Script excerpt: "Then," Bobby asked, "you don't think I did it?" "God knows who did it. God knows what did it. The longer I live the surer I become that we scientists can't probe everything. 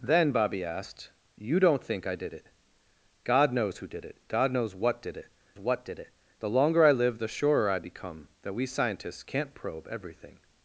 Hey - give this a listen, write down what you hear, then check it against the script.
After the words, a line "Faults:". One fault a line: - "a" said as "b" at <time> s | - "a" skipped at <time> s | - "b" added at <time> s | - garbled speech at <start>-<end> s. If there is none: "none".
"Then," Bobby asked, "you don't think I did it?" "God knows who did it. God knows what did it what did it. The longer I live the surer I become that we scientists can't probe everything.
Faults:
- "what did it" added at 5.6 s